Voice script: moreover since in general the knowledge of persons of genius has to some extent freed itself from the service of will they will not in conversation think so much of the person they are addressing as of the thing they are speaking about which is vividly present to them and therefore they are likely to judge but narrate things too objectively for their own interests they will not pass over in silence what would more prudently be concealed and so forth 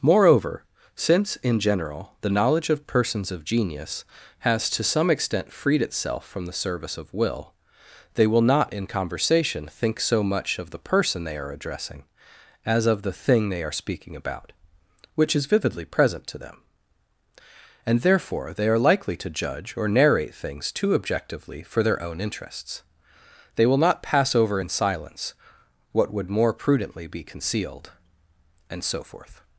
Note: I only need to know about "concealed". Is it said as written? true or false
true